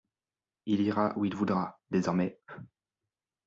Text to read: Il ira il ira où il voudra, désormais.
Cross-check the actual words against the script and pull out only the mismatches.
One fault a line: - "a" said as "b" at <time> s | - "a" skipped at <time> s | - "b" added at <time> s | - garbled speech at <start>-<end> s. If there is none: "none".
- "il ira" skipped at 1.1 s